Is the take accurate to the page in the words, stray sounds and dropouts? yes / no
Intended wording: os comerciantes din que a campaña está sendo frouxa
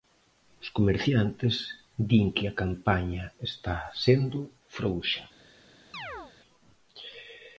no